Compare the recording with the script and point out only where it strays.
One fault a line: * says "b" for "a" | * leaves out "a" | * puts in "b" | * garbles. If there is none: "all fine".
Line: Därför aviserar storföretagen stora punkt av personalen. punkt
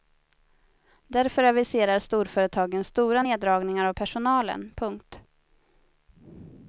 * says "neddragningar" for "punkt"